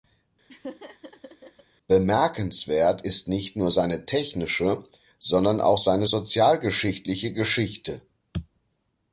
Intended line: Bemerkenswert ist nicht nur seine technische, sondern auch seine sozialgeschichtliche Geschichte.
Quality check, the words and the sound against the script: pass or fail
fail